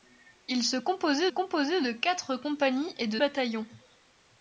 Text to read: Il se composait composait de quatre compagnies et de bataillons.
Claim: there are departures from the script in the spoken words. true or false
false